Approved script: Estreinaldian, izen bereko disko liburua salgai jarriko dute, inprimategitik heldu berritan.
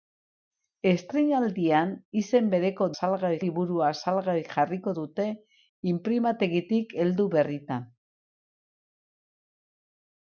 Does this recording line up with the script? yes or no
no